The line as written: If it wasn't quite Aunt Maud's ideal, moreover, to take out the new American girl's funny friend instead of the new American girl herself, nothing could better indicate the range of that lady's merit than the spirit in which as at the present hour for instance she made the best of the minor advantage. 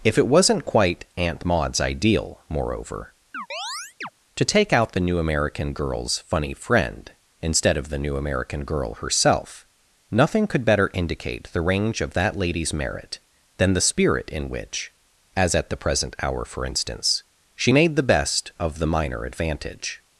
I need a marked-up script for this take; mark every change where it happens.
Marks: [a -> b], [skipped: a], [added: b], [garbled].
If it wasn't quite Aunt Maud's ideal, moreover, to take out the new American girl's funny friend instead of the new American girl herself, nothing could better indicate the range of that lady's merit than the spirit in which as at the present hour for instance she made the best of the minor advantage.